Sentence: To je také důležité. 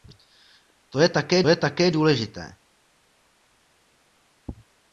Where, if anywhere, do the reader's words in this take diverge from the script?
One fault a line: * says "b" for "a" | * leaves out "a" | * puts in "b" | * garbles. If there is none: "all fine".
* puts in "je také"